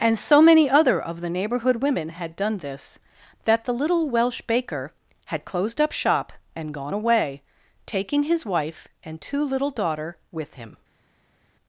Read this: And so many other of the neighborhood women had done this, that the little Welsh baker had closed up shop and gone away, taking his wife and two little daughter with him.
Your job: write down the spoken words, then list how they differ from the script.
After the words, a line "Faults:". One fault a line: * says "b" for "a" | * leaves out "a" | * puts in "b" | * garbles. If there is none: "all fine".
And so many other of the neighborhood women had done this, that the little Welsh baker had closed up shop and gone away, taking his wife and two little daughter with him.
Faults:
all fine